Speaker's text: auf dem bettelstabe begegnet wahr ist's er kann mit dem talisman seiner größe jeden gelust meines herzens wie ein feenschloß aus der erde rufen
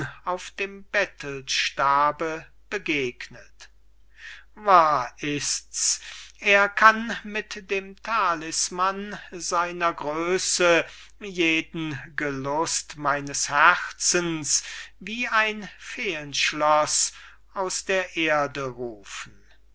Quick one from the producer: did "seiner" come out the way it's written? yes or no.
yes